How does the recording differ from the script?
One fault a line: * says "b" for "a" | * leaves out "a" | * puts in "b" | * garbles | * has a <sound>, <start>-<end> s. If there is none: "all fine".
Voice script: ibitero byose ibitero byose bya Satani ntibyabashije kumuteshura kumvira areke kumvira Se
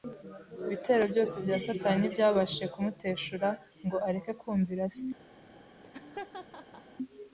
* leaves out "ibitero byose"
* says "ngo" for "kumvira"
* has a laugh, 5.4-7.0 s